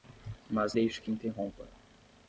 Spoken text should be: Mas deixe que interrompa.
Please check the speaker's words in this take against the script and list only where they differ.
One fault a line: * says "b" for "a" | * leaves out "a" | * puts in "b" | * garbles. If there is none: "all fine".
all fine